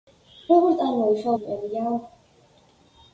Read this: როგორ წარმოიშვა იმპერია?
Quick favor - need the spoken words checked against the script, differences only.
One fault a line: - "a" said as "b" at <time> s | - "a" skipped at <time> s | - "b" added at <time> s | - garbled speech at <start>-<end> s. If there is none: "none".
none